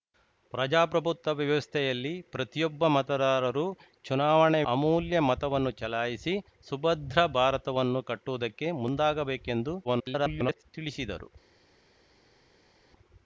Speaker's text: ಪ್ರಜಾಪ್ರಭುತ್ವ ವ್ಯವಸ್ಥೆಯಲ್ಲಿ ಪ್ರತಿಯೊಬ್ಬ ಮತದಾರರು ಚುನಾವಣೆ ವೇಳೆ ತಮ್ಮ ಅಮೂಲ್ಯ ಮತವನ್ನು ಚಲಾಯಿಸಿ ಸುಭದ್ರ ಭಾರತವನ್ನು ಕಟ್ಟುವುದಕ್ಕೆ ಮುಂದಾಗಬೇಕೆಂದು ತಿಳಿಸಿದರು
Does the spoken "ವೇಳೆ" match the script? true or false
false